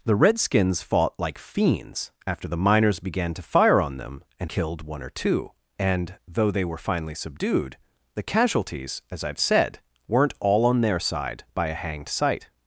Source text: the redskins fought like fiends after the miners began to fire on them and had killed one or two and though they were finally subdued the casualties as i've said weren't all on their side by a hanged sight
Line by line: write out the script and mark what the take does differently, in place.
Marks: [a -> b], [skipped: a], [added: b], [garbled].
the redskins fought like fiends after the miners began to fire on them and [skipped: had] killed one or two and though they were finally subdued the casualties as i've said weren't all on their side by a hanged sight